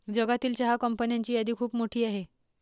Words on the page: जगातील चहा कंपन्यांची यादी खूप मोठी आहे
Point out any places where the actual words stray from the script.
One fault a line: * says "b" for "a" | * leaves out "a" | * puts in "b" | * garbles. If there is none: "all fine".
all fine